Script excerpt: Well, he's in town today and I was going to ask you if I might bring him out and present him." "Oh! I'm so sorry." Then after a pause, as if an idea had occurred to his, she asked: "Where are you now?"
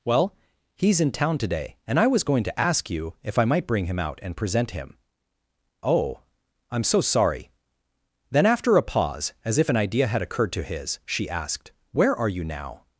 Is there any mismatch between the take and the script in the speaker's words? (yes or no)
no